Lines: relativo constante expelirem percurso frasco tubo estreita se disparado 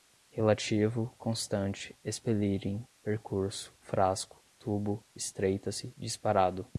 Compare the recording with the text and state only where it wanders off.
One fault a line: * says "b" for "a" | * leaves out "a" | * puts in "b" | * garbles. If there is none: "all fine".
all fine